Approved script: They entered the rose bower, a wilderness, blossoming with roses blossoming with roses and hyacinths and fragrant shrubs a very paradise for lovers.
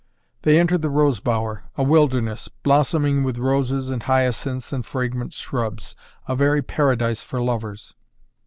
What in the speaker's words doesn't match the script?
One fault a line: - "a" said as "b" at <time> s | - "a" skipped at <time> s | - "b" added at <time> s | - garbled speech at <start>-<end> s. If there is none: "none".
- "blossoming with roses" skipped at 3.9 s